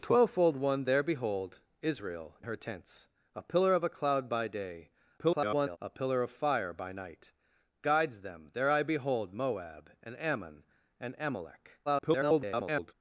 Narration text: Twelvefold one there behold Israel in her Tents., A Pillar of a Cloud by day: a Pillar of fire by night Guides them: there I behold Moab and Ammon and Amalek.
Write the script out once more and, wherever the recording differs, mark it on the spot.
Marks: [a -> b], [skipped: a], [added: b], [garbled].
Twelvefold one there behold Israel [skipped: in] her Tents., A Pillar of a Cloud by day: [garbled] a Pillar of fire by night Guides them: there I behold Moab and Ammon and Amalek. [garbled]